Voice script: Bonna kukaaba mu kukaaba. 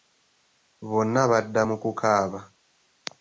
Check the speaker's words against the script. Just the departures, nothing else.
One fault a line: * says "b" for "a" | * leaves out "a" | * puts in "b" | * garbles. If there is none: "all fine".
* says "badda" for "kukaaba"